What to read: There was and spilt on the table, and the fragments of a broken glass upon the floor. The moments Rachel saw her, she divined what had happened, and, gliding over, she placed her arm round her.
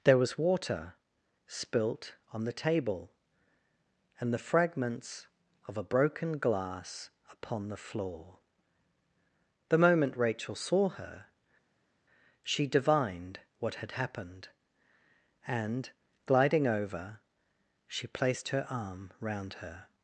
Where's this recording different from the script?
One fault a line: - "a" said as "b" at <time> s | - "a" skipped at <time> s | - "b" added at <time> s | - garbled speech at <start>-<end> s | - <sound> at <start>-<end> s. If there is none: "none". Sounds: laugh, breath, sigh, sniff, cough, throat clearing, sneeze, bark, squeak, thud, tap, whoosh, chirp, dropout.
- "and" said as "water" at 0.4 s
- "moments" said as "moment" at 9.8 s